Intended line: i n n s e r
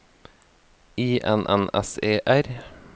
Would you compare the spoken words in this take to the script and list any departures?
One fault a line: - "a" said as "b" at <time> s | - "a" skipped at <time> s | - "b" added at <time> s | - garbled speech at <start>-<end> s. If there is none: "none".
none